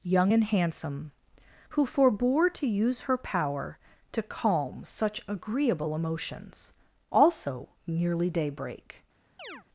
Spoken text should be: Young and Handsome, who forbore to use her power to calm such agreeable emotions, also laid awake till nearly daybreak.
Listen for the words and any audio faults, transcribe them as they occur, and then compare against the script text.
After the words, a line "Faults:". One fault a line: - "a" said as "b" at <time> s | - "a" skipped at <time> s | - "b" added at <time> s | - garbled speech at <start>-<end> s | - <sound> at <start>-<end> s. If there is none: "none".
Young and Handsome, who forbore to use her power to calm such agreeable emotions, also nearly daybreak.
Faults:
- "laid awake till" skipped at 7.7 s
- chirp at 9.4-9.6 s